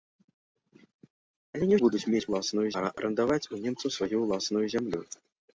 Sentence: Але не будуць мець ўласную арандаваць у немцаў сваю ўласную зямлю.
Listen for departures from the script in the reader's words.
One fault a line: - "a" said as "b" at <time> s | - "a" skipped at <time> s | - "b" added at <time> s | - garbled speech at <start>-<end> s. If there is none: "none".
none